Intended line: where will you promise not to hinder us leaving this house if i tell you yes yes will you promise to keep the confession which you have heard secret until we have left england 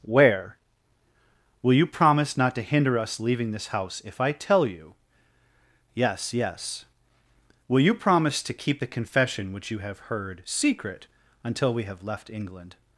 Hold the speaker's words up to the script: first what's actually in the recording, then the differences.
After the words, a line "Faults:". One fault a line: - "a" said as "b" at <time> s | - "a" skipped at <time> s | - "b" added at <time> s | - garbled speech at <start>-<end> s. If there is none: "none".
where will you promise not to hinder us leaving this house if i tell you yes yes will you promise to keep the confession which you have heard secret until we have left england
Faults:
none